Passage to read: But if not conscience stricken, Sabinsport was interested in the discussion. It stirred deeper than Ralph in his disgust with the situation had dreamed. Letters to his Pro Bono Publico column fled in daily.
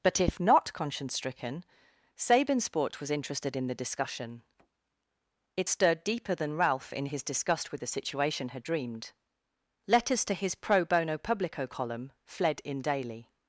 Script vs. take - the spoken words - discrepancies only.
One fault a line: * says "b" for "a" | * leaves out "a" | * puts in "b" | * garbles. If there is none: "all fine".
all fine